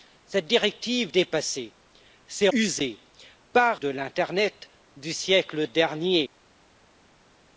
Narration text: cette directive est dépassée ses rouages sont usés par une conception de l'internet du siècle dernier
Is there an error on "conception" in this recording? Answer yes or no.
yes